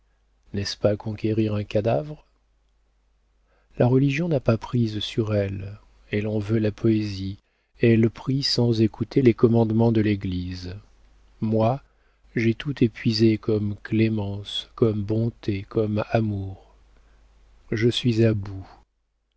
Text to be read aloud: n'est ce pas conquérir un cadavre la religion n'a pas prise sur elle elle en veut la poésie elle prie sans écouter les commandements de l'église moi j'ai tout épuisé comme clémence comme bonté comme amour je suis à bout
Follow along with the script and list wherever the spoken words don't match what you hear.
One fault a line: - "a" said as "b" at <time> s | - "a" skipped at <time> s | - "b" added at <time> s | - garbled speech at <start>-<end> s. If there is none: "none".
none